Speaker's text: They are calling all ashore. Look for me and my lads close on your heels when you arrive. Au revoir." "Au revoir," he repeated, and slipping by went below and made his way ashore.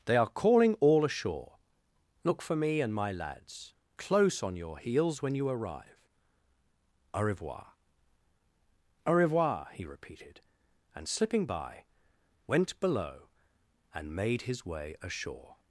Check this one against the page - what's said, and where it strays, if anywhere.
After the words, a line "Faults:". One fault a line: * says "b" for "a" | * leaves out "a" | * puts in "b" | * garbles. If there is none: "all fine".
They are calling all ashore. Look for me and my lads close on your heels when you arrive. Au revoir." "Au revoir," he repeated, and slipping by went below and made his way ashore.
Faults:
all fine